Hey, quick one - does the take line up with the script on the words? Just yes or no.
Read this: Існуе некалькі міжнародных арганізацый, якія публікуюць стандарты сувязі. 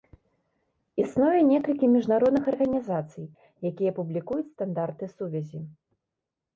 yes